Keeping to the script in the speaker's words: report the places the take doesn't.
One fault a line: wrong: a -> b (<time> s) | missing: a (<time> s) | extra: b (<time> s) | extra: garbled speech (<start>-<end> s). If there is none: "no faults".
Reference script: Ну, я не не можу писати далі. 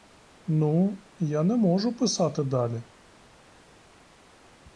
missing: не (1.6 s)